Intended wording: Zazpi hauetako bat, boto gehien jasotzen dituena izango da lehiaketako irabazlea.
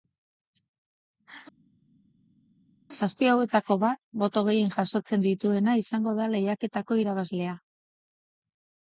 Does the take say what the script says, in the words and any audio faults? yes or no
yes